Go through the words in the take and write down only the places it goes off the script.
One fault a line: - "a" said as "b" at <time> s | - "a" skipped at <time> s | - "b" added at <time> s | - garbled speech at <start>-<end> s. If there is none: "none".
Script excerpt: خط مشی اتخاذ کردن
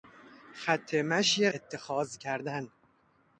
none